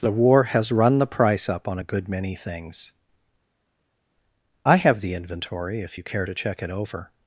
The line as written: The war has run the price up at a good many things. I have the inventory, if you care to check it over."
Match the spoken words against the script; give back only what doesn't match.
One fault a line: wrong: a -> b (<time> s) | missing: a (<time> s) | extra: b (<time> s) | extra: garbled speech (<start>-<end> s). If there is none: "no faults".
wrong: at -> on (1.7 s)